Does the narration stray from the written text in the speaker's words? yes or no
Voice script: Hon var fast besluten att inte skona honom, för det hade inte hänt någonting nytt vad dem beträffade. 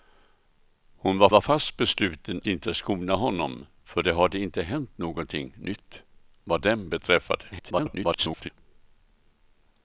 yes